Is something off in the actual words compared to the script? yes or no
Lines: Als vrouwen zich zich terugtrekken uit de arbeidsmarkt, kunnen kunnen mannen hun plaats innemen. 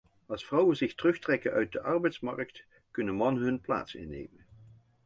yes